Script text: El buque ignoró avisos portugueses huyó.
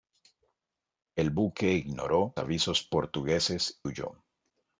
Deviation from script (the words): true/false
false